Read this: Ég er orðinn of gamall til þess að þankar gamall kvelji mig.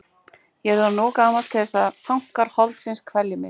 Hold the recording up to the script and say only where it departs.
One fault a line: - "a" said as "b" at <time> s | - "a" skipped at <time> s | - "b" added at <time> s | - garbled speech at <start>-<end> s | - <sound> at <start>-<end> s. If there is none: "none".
- "gamall" said as "holdsins" at 2.6 s